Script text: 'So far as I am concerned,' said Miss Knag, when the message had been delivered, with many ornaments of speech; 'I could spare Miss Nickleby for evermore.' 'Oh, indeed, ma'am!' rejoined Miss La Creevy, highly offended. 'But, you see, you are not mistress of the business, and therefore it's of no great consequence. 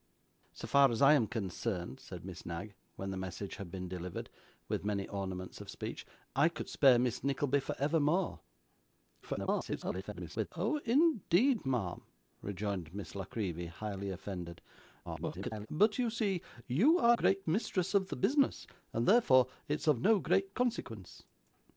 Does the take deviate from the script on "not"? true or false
true